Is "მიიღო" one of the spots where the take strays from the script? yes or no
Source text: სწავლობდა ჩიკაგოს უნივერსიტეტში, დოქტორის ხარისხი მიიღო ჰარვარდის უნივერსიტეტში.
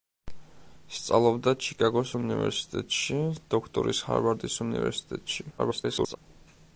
yes